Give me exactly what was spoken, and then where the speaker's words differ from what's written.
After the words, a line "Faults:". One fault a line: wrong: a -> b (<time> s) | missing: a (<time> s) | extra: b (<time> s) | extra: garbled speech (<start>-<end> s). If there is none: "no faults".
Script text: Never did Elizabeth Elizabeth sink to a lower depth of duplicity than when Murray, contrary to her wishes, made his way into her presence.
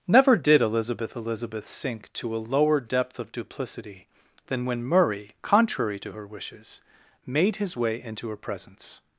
Never did Elizabeth Elizabeth sink to a lower depth of duplicity than when Murray, contrary to her wishes, made his way into her presence.
Faults:
no faults